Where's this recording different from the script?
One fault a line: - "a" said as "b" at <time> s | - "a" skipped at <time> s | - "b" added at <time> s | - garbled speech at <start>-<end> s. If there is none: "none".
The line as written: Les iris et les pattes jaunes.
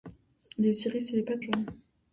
none